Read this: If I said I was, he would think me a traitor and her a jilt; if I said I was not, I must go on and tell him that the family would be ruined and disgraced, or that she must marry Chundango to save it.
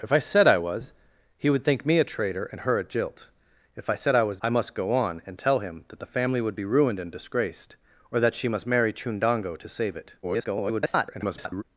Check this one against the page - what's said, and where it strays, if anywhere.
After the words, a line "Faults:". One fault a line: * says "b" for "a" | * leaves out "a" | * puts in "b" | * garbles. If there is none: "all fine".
If I said I was, he would think me a traitor and her a jilt; if I said I was I must go on and tell him that the family would be ruined and disgraced, or that she must marry Chundango to save it. [garbled]
Faults:
* leaves out "not"
* garbles